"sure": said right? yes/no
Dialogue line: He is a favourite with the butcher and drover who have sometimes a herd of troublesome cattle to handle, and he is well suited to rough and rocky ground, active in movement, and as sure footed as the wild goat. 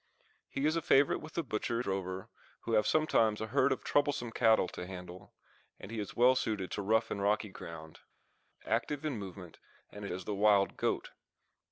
no